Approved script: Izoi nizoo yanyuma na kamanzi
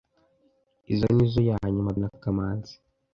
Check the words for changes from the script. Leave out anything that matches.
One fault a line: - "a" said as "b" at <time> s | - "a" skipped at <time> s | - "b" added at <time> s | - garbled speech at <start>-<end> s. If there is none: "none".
none